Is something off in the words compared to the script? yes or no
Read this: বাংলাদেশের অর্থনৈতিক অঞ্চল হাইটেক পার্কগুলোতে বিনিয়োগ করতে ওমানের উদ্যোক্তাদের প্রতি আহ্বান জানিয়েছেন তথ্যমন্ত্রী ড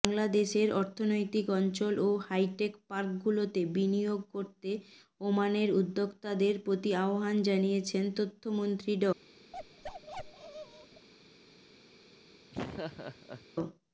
yes